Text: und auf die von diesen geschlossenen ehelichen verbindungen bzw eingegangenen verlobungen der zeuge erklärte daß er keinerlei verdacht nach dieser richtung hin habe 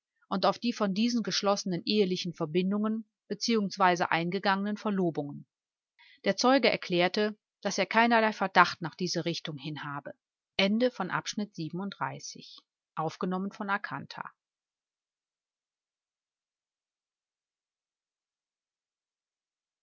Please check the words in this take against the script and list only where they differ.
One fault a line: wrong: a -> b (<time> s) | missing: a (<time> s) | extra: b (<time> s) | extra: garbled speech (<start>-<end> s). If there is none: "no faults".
no faults